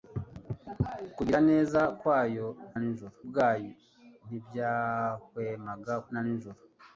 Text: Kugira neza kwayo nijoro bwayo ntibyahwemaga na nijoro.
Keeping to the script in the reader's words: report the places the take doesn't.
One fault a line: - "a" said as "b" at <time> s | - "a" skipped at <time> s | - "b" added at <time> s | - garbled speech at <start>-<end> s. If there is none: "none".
none